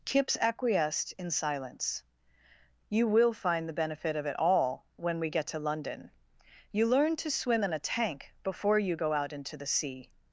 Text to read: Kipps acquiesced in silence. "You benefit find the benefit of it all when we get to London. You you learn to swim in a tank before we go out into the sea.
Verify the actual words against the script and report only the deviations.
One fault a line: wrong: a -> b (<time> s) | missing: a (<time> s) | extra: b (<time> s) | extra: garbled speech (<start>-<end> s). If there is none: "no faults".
wrong: benefit -> will (3.1 s)
missing: you (6.9 s)
wrong: we -> you (8.8 s)